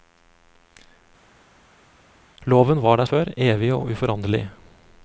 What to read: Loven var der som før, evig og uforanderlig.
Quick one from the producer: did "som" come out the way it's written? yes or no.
no